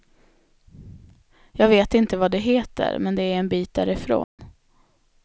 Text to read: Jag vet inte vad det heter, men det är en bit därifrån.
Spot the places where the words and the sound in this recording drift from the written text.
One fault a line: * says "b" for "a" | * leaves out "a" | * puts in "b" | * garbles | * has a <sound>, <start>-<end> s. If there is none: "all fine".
* has a dropout, 4.2-4.4 s